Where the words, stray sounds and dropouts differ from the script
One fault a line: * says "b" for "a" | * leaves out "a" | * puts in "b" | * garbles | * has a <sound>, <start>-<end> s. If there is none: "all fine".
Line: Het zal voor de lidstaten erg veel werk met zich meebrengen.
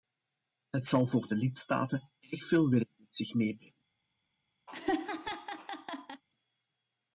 * has a laugh, 4.7-6.2 s